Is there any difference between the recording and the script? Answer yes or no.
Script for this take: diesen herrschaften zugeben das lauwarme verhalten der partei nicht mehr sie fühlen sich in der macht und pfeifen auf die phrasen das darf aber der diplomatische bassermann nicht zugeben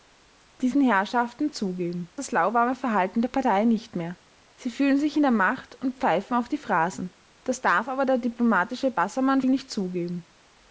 no